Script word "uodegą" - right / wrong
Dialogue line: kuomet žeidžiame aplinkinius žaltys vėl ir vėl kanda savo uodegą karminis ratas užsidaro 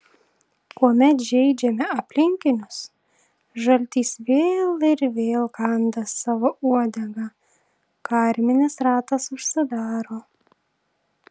right